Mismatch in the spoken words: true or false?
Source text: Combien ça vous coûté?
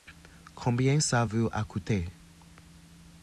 true